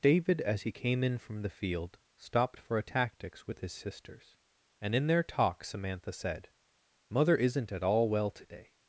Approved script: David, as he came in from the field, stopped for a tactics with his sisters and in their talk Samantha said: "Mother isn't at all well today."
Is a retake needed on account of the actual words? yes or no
no